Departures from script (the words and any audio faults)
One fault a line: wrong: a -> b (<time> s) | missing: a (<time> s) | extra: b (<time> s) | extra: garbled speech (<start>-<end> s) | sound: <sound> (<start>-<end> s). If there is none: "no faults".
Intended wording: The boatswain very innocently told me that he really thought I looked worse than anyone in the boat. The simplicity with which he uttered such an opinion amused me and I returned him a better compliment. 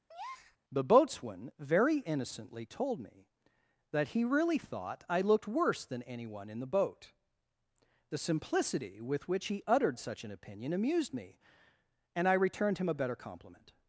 sound: breath (0.1-0.6 s)